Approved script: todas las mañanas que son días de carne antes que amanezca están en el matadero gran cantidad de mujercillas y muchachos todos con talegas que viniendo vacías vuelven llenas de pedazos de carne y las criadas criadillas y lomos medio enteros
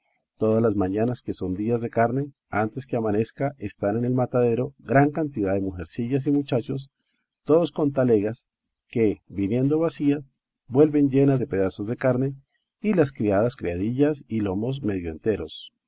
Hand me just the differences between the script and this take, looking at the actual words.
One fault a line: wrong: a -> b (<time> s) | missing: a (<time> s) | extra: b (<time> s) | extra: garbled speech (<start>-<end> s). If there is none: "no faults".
no faults